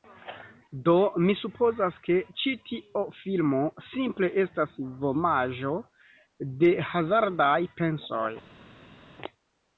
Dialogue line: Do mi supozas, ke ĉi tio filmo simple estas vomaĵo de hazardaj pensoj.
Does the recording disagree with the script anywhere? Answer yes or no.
no